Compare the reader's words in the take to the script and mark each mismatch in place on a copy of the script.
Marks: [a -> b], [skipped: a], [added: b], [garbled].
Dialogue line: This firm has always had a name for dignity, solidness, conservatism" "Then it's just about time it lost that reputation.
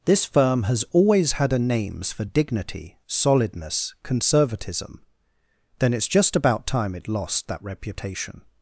This firm has always had a [name -> names] for dignity, solidness, conservatism" "Then it's just about time it lost that reputation.